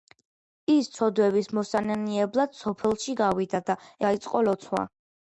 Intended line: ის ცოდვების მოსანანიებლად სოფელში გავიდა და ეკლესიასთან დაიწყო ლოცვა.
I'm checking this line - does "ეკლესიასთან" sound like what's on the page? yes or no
no